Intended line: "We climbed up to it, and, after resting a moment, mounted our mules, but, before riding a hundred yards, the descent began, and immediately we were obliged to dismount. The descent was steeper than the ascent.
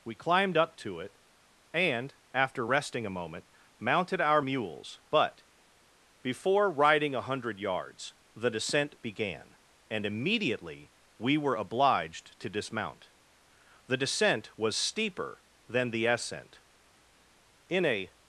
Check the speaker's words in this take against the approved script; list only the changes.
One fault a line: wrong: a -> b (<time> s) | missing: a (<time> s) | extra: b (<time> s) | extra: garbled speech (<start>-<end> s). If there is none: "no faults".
extra: In a (17.7 s)